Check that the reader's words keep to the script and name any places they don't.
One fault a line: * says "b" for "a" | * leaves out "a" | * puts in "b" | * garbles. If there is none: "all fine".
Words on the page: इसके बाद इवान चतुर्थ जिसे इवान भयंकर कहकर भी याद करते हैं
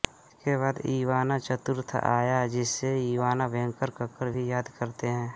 * puts in "आया"